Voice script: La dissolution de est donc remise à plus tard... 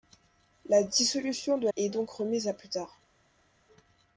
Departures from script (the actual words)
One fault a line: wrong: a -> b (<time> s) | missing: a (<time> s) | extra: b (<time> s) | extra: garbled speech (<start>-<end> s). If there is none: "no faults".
no faults